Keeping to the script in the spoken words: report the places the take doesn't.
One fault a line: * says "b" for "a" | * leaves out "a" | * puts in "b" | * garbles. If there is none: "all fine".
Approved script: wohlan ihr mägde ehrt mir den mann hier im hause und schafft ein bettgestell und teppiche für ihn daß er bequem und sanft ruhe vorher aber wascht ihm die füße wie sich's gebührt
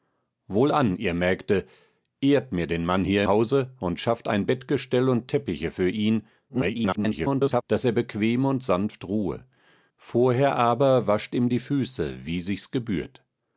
* leaves out "im"
* garbles